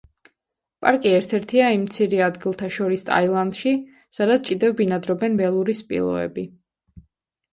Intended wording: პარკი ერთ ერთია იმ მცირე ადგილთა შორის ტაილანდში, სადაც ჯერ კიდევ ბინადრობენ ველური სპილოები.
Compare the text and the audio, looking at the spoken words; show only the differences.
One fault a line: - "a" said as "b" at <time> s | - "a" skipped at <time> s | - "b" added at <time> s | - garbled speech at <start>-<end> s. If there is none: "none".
- "ჯერ" skipped at 4.5 s